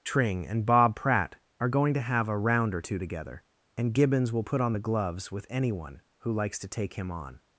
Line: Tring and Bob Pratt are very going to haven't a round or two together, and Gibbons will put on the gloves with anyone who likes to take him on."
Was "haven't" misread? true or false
true